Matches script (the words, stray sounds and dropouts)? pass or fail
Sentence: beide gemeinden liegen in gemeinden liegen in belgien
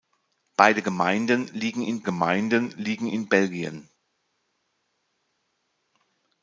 pass